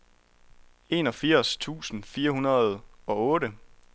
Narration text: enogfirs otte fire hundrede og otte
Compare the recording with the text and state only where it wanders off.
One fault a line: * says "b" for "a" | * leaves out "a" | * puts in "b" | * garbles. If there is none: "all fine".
* says "tusind" for "otte"